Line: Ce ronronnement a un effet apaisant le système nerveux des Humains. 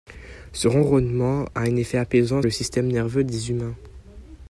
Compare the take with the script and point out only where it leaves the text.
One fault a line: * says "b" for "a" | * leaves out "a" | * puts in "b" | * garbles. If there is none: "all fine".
all fine